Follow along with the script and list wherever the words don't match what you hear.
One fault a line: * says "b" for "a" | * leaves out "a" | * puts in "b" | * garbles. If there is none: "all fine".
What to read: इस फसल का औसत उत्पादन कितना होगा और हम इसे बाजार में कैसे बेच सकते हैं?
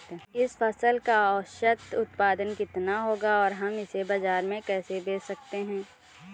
all fine